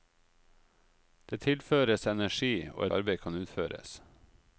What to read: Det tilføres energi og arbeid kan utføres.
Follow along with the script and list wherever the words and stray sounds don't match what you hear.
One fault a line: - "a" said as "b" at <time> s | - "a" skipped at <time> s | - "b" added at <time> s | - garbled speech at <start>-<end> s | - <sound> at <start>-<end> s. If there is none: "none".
none